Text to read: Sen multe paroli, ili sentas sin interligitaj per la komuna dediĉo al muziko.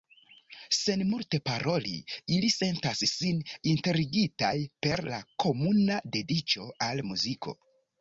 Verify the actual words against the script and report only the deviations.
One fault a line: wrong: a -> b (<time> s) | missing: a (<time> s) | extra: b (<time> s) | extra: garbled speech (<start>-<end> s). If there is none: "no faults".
no faults